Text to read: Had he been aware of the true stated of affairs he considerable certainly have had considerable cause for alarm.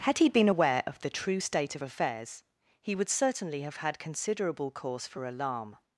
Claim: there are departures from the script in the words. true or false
true